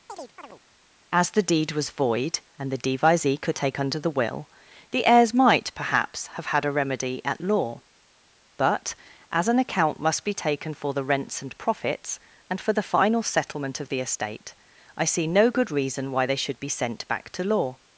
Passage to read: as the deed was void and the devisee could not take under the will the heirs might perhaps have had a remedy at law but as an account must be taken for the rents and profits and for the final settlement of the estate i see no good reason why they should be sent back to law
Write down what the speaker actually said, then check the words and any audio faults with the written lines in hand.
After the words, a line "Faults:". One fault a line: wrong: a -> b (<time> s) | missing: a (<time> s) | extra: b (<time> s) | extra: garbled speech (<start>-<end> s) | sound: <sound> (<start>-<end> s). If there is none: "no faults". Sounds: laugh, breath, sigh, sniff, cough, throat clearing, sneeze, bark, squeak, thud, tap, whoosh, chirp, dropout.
as the deed was void and the devisee could take under the will the heirs might perhaps have had a remedy at law but as an account must be taken for the rents and profits and for the final settlement of the estate i see no good reason why they should be sent back to law
Faults:
sound: chirp (0.1-0.6 s)
missing: not (3.6 s)